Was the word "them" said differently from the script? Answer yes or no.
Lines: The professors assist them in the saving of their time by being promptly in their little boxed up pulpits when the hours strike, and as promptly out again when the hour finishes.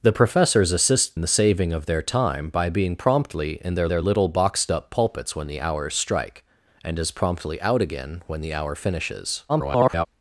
yes